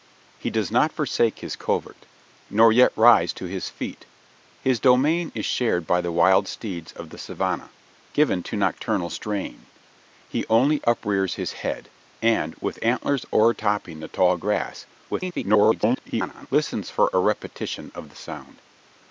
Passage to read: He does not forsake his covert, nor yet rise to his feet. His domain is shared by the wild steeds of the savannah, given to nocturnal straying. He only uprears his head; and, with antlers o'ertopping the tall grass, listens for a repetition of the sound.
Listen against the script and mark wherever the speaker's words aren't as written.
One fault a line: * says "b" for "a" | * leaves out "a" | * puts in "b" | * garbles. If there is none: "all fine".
* garbles